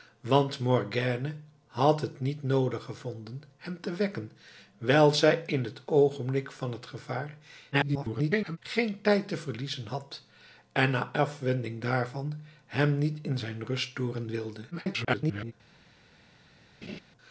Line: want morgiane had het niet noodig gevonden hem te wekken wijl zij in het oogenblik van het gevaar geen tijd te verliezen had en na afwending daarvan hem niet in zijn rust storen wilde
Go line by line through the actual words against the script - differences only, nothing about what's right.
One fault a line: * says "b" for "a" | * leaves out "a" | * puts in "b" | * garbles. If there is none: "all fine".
* garbles
* garbles